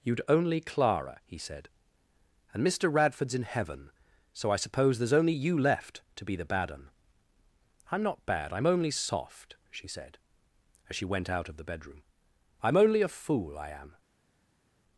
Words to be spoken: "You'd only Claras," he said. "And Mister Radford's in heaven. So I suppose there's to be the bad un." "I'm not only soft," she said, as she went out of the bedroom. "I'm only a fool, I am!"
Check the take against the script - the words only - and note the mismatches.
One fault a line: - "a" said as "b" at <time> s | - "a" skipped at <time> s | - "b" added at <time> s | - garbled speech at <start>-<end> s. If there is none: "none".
- "Claras" said as "Clara" at 0.6 s
- "only you left" added at 5.1 s
- "bad I'm" added at 8.3 s